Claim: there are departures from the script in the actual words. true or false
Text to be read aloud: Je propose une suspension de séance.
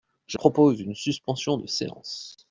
false